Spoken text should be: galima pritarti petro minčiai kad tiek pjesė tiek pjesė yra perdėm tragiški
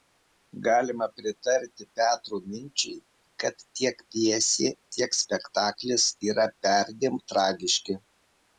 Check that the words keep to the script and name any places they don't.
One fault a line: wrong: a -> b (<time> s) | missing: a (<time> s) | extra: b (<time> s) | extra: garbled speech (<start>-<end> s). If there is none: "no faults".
wrong: pjesė -> spektaklis (5.2 s)